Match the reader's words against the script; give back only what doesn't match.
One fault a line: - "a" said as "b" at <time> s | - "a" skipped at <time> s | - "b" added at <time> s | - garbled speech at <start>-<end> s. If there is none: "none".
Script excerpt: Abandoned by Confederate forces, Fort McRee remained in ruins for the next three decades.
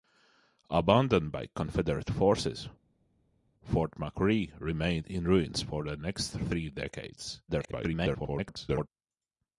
- garbled speech at 7.5-8.9 s